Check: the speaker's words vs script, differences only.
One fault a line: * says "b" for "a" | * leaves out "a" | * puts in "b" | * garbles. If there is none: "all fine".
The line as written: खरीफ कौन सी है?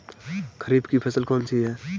* puts in "की फसल"